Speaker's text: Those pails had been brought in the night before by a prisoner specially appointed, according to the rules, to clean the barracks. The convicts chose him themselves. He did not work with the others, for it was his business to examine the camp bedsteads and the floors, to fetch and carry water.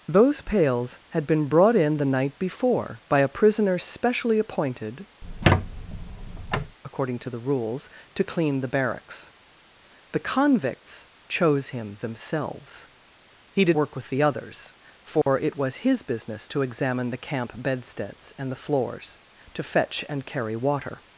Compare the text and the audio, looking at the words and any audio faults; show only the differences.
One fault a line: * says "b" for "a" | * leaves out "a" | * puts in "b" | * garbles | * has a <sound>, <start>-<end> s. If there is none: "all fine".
* has a squeak, 5.2-6.8 s
* leaves out "not"
* has a dropout, 15.2-15.3 s